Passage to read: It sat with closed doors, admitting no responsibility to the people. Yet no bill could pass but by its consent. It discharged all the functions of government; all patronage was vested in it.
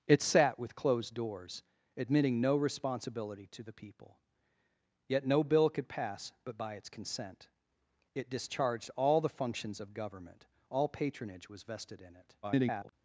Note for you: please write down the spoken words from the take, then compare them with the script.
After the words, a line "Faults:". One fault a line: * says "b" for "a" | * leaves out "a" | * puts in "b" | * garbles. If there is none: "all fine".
It sat with closed doors, admitting no responsibility to the people. Yet no bill could pass but by its consent. It discharged all the functions of government; all patronage was vested in it. [garbled]
Faults:
* garbles